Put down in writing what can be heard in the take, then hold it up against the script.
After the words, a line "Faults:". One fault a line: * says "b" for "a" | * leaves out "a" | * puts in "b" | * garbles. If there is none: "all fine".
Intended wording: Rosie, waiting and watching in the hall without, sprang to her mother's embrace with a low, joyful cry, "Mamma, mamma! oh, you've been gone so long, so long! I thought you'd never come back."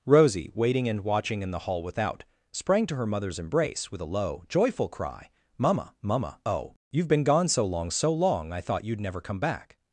Rosie, waiting and watching in the hall without, sprang to her mother's embrace with a low, joyful cry, "Mamma, mamma! oh, you've been gone so long, so long! I thought you'd never come back."
Faults:
all fine